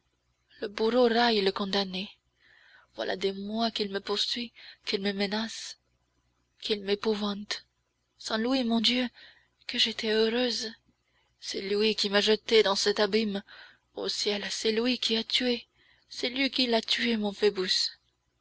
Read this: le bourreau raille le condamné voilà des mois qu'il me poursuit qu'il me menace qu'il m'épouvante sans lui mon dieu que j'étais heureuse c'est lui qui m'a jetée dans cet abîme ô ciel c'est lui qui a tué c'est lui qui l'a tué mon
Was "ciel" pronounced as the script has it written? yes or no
yes